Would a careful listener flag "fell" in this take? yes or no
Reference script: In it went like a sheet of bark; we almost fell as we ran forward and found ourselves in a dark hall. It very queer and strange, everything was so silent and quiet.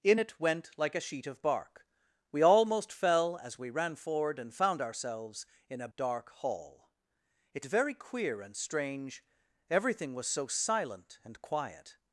no